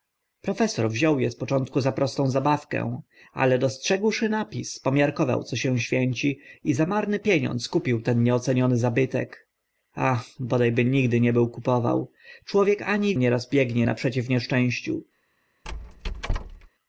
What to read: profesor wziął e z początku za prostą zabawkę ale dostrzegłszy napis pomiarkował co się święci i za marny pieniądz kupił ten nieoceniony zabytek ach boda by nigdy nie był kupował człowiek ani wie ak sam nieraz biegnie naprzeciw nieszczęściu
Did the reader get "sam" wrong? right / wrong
wrong